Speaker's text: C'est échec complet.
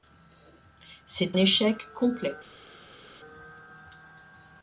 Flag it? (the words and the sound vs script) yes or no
no